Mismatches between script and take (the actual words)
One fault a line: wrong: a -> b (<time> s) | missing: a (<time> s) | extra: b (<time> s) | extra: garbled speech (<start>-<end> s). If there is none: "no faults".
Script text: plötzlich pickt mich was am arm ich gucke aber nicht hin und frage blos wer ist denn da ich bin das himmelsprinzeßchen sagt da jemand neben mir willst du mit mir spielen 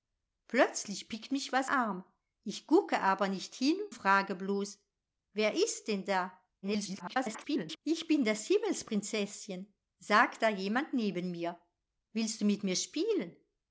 missing: am (1.7 s)
missing: und (3.8 s)
extra: garbled speech (6.6-7.8 s)